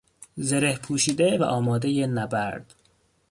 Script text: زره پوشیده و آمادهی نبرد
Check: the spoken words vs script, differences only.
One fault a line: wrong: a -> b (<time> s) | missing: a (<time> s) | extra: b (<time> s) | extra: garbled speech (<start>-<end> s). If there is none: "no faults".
no faults